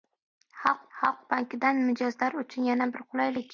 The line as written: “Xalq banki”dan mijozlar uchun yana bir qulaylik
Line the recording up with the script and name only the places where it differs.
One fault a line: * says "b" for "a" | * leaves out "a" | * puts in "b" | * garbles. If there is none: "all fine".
* puts in "xalq"